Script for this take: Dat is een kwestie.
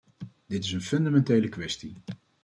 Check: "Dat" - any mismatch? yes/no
yes